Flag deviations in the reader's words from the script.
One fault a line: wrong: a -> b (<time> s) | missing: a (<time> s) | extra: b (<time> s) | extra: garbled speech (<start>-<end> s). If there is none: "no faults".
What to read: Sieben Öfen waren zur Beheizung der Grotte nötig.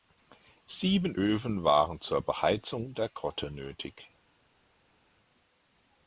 no faults